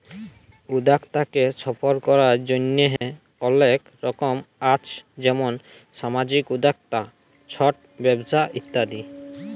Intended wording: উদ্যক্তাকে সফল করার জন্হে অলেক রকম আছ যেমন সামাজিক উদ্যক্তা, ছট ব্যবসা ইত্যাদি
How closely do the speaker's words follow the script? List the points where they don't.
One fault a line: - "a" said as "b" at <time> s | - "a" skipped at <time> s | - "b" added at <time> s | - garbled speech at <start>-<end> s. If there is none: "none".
none